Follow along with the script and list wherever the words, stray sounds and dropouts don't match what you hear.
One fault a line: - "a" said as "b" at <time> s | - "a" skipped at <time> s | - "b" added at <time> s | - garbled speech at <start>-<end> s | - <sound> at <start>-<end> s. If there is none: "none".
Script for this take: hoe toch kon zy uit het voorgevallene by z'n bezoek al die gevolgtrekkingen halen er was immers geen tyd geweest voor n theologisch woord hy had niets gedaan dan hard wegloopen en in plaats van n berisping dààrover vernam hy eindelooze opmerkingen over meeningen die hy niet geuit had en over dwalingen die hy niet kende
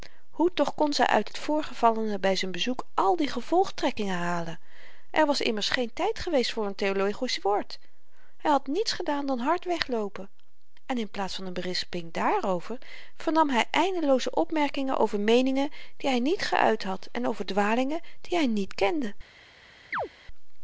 - chirp at 19.9-20.1 s